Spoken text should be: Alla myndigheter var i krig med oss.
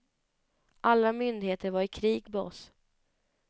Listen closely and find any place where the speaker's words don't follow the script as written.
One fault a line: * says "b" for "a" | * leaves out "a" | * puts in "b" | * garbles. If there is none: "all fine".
all fine